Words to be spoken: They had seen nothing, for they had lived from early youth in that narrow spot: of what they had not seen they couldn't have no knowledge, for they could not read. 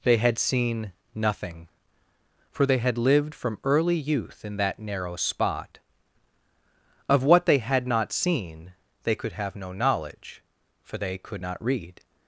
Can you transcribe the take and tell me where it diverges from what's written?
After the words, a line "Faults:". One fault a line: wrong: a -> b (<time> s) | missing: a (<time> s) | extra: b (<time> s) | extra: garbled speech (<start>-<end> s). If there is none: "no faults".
They had seen nothing, for they had lived from early youth in that narrow spot: of what they had not seen they could have no knowledge, for they could not read.
Faults:
wrong: couldn't -> could (9.2 s)